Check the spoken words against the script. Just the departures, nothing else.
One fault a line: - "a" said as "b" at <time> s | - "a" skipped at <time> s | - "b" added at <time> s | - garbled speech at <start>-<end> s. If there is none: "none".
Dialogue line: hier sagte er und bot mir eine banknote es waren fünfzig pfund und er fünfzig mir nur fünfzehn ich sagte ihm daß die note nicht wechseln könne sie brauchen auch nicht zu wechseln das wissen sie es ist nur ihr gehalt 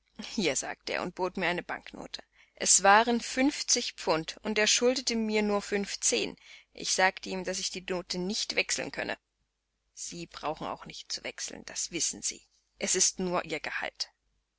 - "fünfzig" said as "schuldete" at 4.7 s
- "ich" added at 7.6 s